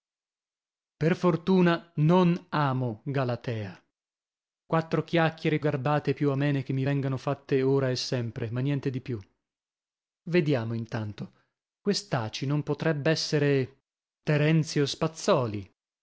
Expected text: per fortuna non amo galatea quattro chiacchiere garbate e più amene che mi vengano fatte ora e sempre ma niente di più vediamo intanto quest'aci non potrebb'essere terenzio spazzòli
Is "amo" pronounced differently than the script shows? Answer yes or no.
no